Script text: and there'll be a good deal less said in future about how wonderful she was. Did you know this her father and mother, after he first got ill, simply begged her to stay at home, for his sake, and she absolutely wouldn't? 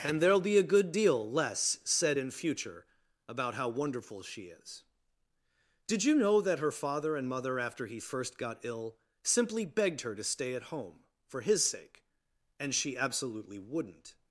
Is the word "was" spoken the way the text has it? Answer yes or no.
no